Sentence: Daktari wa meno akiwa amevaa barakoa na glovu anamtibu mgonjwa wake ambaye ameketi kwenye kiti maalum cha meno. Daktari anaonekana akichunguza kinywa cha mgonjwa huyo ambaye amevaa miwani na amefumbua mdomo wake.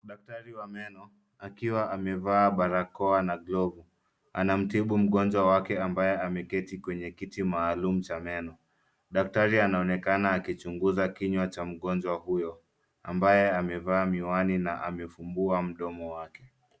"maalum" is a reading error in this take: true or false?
false